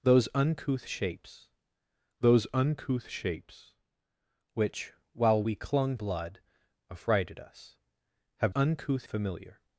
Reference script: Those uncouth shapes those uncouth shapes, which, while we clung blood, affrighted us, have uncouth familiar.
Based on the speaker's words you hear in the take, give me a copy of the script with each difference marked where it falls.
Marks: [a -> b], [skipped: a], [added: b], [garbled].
Those uncouth shapes those uncouth shapes, which, while we clung blood, affrighted us, have uncouth familiar.